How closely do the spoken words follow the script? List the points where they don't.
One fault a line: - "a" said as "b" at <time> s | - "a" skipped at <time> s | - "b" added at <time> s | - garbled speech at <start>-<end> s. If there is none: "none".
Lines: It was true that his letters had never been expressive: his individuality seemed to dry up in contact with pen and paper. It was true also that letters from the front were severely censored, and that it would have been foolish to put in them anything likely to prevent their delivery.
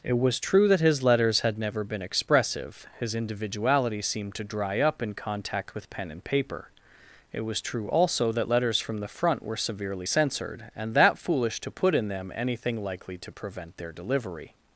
- "it would have been" skipped at 11.2 s